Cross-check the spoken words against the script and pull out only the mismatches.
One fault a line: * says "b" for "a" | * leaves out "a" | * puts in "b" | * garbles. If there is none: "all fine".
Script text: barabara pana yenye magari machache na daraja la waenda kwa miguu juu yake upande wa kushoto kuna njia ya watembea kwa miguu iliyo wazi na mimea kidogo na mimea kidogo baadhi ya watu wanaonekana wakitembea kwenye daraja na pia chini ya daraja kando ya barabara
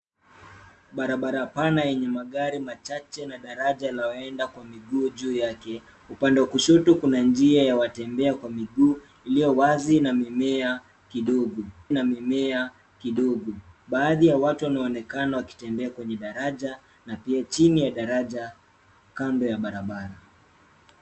all fine